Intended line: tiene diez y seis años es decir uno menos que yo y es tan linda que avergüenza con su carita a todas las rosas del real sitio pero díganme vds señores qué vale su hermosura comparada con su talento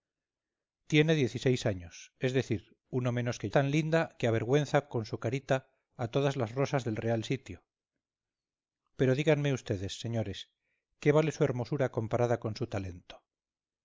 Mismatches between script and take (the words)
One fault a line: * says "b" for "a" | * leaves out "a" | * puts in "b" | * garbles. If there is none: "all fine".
* leaves out "yo y es"